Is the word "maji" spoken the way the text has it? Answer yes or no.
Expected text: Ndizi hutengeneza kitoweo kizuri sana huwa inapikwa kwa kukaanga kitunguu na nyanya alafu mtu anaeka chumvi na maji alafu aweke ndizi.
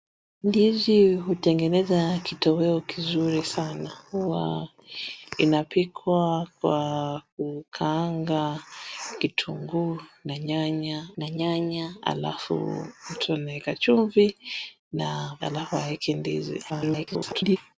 no